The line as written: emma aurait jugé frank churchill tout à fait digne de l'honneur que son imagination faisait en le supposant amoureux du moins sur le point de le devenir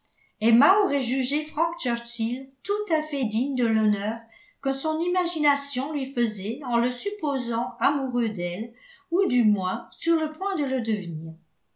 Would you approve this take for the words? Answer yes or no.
no